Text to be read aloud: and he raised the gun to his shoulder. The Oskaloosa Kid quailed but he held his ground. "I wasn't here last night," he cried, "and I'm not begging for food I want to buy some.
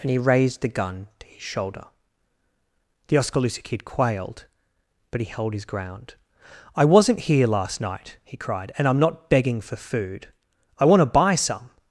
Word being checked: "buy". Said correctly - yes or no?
yes